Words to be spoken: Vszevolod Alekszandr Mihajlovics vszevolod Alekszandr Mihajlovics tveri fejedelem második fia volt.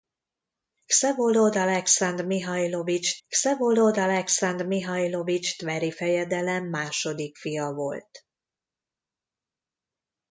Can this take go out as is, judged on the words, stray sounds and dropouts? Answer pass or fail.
pass